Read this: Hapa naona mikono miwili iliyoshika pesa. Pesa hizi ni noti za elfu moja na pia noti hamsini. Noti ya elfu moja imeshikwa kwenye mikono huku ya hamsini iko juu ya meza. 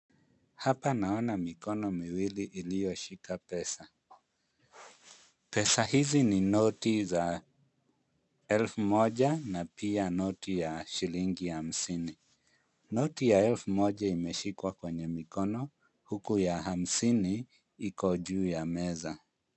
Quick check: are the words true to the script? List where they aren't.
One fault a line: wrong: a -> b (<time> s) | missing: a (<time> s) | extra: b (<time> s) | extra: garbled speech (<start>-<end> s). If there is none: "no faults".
extra: ya shilingi (10.6 s)